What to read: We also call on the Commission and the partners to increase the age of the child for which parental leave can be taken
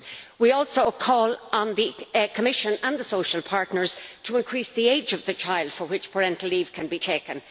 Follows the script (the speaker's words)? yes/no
no